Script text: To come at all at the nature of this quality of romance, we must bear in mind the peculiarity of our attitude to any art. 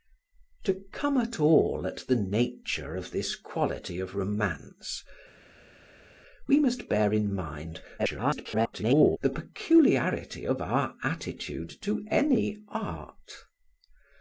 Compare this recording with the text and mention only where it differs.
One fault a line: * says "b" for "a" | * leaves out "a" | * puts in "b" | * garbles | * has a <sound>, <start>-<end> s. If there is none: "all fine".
* garbles